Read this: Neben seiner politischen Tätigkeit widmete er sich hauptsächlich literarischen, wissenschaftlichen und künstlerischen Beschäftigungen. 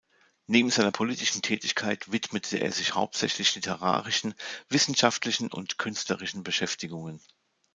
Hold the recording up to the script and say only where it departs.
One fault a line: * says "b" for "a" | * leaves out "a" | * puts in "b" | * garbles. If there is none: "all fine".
all fine